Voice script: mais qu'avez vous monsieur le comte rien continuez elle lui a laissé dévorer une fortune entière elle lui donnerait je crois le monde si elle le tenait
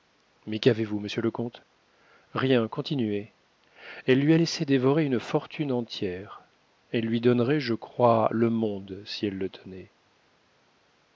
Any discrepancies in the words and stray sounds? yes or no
no